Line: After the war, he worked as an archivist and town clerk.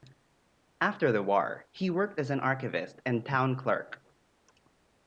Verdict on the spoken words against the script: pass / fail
pass